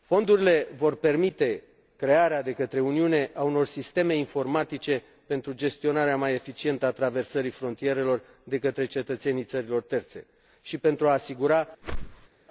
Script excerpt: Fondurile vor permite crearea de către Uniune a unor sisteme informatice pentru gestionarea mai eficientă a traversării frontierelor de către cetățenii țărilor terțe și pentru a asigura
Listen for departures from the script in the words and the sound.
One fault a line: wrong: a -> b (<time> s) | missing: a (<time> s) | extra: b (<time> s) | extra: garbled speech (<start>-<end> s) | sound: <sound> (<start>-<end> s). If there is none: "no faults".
sound: whoosh (11.8-12.3 s)